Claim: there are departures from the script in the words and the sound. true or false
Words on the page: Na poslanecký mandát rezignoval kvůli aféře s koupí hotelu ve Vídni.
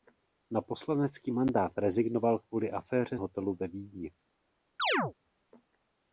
true